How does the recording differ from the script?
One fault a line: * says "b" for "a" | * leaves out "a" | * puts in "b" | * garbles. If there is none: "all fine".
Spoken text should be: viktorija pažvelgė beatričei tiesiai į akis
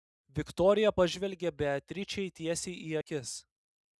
all fine